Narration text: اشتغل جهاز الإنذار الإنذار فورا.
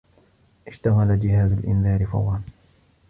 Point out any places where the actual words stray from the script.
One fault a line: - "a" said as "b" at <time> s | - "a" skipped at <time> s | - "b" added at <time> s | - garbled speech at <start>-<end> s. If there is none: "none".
- "الإنذار" skipped at 2.1 s